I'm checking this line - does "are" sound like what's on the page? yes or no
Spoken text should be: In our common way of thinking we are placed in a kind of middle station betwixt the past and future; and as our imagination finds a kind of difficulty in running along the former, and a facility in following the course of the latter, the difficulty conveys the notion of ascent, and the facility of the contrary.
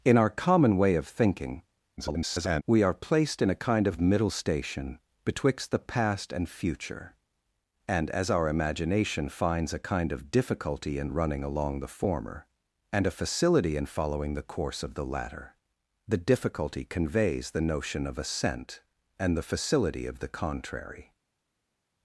yes